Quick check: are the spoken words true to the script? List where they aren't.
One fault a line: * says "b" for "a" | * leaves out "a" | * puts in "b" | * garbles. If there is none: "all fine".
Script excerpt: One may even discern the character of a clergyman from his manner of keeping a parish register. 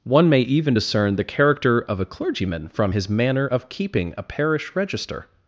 all fine